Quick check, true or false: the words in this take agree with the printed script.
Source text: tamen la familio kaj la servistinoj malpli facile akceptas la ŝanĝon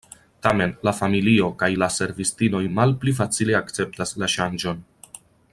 true